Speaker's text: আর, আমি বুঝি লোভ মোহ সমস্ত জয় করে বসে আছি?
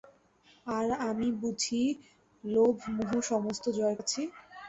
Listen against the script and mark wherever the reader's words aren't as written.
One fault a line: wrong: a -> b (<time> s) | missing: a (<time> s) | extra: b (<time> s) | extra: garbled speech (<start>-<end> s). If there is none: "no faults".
missing: করে বসে (4.0 s)